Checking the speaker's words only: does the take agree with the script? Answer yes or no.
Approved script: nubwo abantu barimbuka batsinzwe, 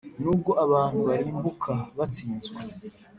yes